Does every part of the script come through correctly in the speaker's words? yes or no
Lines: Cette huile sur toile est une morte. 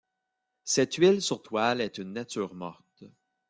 no